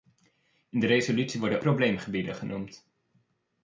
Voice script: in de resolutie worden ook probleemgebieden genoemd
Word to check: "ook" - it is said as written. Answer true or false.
false